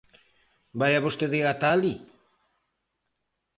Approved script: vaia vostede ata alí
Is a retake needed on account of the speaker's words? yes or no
no